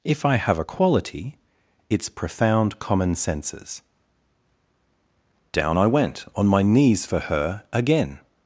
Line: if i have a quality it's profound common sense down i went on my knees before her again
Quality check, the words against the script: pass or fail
fail